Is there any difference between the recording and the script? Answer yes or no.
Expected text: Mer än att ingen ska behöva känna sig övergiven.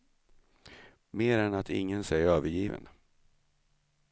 yes